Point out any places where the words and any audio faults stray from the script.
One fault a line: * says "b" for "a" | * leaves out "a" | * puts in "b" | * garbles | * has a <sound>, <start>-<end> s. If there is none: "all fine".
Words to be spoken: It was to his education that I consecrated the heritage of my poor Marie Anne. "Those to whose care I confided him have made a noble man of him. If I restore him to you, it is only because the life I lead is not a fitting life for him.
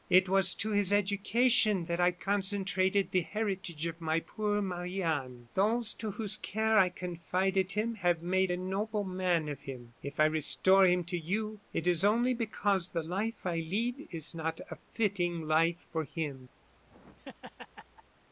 * has a laugh, 16.6-18.2 s